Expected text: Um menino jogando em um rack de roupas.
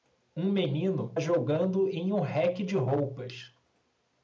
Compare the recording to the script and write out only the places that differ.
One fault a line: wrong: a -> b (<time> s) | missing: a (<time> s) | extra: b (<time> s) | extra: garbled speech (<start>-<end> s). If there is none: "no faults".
no faults